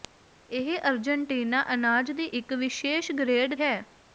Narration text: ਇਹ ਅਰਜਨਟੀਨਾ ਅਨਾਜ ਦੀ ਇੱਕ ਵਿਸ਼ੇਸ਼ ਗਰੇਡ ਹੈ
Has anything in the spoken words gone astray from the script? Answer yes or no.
no